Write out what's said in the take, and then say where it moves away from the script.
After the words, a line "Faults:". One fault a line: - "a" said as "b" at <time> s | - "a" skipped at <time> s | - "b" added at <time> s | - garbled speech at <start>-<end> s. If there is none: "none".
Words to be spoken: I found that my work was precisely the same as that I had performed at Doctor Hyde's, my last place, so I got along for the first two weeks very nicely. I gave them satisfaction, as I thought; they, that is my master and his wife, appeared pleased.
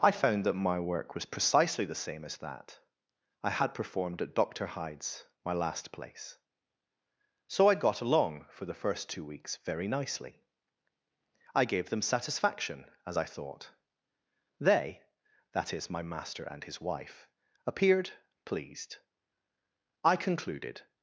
I found that my work was precisely the same as that I had performed at Doctor Hyde's, my last place, so I got along for the first two weeks very nicely. I gave them satisfaction, as I thought; they, that is my master and his wife, appeared pleased. I concluded
Faults:
- "I concluded" added at 20.0 s